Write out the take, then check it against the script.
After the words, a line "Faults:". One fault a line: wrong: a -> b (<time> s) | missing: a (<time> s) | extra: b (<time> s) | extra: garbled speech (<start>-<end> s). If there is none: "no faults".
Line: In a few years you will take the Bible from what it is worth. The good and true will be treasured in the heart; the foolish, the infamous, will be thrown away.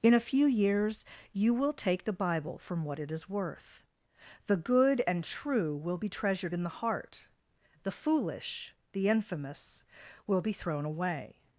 In a few years you will take the Bible from what it is worth. The good and true will be treasured in the heart; the foolish, the infamous, will be thrown away.
Faults:
no faults